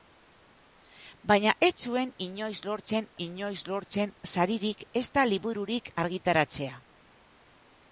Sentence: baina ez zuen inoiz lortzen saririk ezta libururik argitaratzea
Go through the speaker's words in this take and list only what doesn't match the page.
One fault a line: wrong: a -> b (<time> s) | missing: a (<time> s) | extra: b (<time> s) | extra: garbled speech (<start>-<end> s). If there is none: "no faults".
extra: inoiz lortzen (3.3 s)